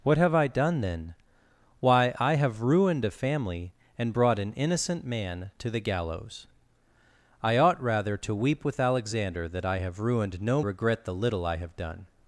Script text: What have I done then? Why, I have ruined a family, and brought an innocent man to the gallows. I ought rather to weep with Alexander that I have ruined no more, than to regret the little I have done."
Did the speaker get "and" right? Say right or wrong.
right